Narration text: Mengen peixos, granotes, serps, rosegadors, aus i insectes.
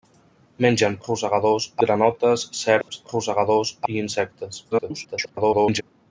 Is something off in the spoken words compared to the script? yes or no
yes